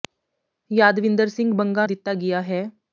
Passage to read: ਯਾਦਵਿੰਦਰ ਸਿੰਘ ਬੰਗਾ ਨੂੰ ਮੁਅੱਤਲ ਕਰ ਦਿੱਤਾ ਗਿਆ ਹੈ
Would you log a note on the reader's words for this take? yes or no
yes